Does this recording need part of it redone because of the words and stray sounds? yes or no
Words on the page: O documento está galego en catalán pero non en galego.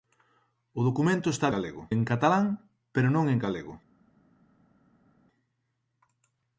no